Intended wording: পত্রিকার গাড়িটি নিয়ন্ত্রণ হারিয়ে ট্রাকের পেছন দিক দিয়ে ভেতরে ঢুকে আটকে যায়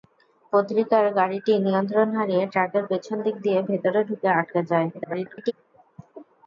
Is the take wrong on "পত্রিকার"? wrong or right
right